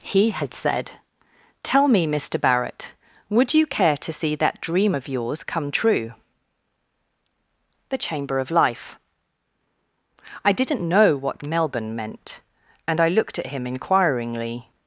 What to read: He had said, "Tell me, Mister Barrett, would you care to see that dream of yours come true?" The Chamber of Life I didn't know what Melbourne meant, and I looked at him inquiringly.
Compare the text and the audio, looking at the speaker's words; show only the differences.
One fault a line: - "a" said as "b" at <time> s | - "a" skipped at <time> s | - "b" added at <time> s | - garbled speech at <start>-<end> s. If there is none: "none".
none